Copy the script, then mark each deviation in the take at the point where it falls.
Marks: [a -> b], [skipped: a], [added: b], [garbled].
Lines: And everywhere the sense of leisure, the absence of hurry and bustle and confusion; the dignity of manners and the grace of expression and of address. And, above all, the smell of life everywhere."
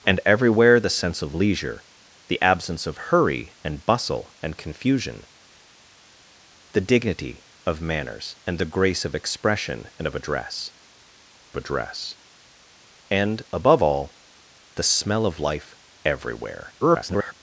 And everywhere the sense of leisure, the absence of hurry and bustle and confusion; the dignity of manners and the grace of expression and of address. [added: address] And, above all, the smell of life everywhere." [garbled]